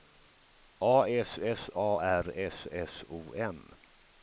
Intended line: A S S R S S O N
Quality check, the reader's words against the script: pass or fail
fail